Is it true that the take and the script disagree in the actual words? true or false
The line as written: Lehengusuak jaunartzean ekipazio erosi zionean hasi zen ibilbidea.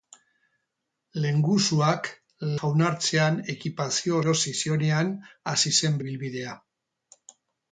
false